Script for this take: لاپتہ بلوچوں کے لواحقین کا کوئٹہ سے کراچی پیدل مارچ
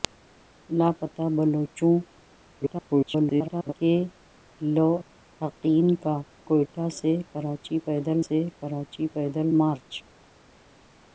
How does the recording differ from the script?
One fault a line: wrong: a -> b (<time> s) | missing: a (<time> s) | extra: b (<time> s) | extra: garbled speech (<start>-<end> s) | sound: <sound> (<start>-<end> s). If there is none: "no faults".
extra: garbled speech (2.5-3.7 s)
extra: سے کراچی پیدل (8.3 s)